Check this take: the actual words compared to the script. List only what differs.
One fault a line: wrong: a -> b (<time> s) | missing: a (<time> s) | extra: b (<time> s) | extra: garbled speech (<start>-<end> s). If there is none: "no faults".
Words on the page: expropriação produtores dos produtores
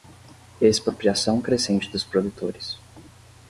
wrong: produtores -> crescente (1.4 s)